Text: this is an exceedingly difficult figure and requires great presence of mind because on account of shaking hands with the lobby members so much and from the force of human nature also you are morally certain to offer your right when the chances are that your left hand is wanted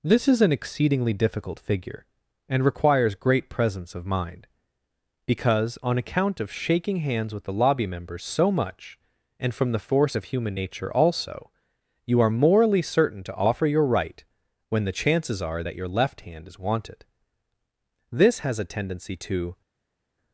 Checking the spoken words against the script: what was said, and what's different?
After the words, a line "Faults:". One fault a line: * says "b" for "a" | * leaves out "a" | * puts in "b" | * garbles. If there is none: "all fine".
this is an exceedingly difficult figure and requires great presence of mind because on account of shaking hands with the lobby members so much and from the force of human nature also you are morally certain to offer your right when the chances are that your left hand is wanted this has a tendency to
Faults:
* puts in "this has a tendency to"